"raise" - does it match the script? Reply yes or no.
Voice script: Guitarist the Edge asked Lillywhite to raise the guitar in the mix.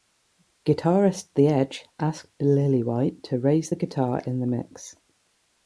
yes